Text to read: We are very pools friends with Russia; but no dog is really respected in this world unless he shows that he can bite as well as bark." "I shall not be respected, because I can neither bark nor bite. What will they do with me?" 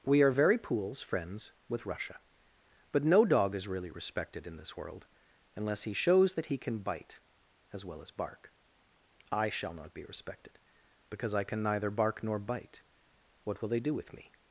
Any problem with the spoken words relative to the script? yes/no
no